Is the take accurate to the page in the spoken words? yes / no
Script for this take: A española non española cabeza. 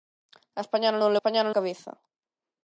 yes